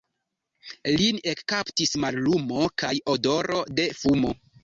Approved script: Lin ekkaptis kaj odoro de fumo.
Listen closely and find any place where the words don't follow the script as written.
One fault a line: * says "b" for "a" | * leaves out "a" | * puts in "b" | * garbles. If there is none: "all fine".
* puts in "mallumo"